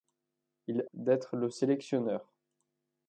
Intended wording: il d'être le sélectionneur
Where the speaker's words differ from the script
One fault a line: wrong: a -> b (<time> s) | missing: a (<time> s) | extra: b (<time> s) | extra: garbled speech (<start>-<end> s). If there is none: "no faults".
no faults